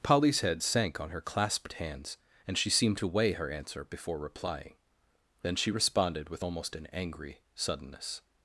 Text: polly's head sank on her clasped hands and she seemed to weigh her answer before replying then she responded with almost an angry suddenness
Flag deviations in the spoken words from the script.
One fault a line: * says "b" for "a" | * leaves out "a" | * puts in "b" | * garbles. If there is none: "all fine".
all fine